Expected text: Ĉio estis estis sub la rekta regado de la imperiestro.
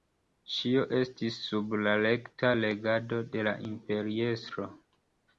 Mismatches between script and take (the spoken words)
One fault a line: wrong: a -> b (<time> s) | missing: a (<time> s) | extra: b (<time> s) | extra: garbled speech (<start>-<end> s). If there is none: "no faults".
missing: estis (1.4 s)